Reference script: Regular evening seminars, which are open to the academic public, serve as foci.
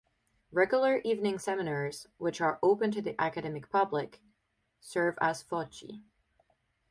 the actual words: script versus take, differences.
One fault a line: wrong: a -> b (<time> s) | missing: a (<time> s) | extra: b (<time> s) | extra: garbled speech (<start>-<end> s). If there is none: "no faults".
no faults